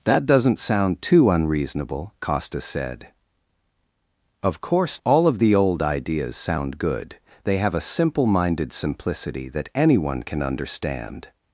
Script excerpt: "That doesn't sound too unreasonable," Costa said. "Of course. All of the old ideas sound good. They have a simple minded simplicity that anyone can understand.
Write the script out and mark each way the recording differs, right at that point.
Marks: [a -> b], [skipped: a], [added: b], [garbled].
"That doesn't sound too unreasonable," Costa said. "Of course. All of the old ideas sound good. They have a simple minded simplicity that anyone can understand.